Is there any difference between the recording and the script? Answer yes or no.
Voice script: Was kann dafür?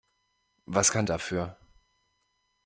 no